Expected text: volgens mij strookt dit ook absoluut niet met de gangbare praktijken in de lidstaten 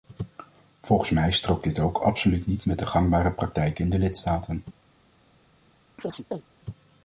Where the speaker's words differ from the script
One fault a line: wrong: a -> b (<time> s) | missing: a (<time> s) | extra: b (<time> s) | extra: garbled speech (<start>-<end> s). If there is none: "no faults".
no faults